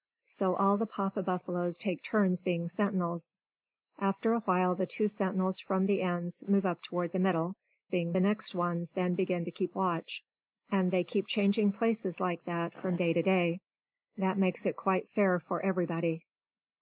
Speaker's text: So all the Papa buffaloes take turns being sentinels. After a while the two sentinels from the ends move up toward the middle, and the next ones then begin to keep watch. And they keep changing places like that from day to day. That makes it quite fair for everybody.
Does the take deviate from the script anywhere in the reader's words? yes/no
yes